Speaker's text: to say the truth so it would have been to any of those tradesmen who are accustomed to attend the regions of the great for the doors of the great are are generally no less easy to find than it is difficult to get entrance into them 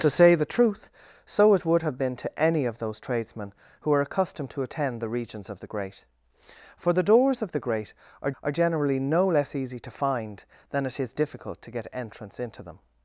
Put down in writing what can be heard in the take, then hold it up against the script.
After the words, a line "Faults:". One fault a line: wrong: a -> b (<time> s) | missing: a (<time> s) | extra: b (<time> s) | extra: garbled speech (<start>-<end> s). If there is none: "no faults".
to say the truth so it would have been to any of those tradesmen who are accustomed to attend the regions of the great for the doors of the great are are generally no less easy to find than it is difficult to get entrance into them
Faults:
no faults